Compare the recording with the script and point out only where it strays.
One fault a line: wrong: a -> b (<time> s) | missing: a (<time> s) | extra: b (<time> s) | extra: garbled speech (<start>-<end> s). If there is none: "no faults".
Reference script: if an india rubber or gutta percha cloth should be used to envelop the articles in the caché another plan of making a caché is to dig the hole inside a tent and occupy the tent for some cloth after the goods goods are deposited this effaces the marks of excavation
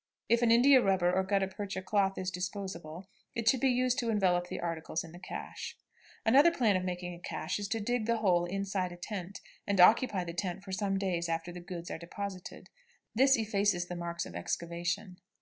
extra: is disposable it (2.2 s)
wrong: cloth -> days (11.0 s)
missing: goods (11.9 s)